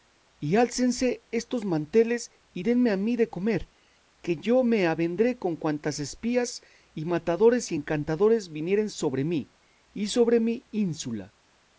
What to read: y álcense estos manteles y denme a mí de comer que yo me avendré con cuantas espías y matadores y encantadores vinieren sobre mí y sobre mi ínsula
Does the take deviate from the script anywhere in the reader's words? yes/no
no